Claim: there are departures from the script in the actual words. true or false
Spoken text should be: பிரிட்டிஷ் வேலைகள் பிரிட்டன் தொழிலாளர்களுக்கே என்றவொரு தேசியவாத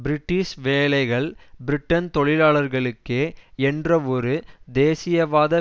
false